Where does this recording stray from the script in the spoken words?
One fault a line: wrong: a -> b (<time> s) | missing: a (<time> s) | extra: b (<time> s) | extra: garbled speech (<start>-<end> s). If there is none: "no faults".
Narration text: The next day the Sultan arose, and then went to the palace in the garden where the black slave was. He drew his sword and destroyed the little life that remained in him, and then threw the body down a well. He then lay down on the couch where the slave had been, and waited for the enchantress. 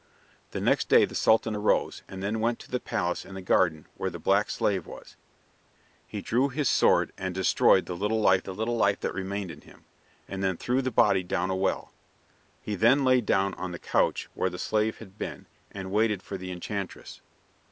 extra: the little life (8.4 s)